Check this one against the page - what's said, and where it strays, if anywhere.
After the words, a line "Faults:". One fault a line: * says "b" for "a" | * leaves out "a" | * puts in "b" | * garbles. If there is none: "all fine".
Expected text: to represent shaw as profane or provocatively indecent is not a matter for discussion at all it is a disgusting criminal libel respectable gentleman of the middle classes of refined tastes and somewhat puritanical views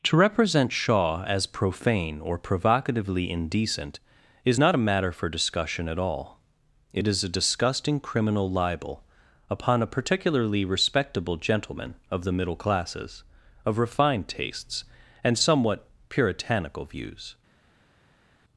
to represent shaw as profane or provocatively indecent is not a matter for discussion at all it is a disgusting criminal libel upon a particularly respectable gentleman of the middle classes of refined tastes and somewhat puritanical views
Faults:
* puts in "upon a particularly"